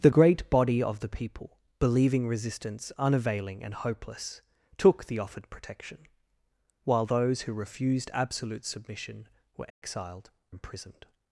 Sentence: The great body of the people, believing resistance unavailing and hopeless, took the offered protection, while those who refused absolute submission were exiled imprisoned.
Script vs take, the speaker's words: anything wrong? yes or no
no